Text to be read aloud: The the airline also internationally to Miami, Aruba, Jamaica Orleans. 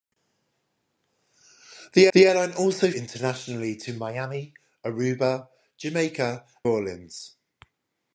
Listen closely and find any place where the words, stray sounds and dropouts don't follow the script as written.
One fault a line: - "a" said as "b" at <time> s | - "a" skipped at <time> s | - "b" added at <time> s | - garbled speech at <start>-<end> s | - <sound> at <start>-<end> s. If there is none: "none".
none